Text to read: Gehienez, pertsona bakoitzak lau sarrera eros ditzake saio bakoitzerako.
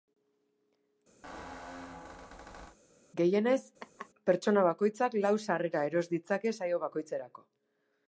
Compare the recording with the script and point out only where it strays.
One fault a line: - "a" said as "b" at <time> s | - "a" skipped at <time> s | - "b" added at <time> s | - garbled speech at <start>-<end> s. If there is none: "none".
none